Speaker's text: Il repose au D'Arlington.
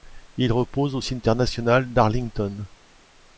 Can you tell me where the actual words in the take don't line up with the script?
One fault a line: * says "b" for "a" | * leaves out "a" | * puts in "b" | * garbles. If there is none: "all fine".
* puts in "Cimetière national"